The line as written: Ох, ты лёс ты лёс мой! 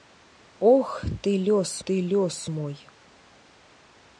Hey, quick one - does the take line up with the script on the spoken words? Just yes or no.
yes